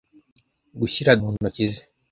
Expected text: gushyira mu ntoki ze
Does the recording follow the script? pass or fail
pass